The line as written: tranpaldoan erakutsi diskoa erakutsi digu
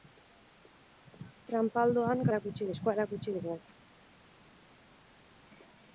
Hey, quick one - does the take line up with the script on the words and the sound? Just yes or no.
yes